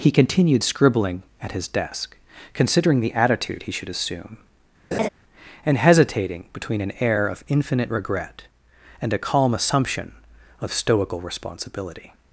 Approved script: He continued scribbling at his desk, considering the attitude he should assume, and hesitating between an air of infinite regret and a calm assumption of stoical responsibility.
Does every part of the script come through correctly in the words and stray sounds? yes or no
no